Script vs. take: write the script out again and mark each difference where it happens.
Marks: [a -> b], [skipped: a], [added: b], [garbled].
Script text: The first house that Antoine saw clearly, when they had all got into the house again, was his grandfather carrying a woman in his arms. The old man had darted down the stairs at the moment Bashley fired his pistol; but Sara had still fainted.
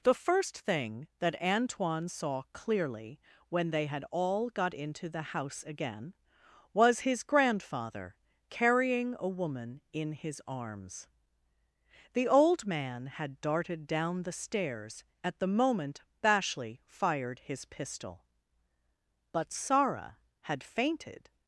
The first [house -> thing] that Antoine saw clearly, when they had all got into the house again, was his grandfather carrying a woman in his arms. The old man had darted down the stairs at the moment Bashley fired his pistol; but Sara had [skipped: still] fainted.